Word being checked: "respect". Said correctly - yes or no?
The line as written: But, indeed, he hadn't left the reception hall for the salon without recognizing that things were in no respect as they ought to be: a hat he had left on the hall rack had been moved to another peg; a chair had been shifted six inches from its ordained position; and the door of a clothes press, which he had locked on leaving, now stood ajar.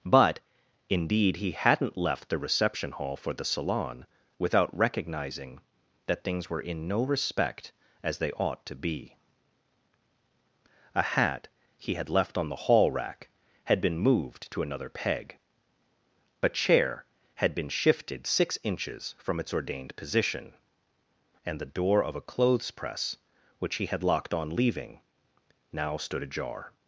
yes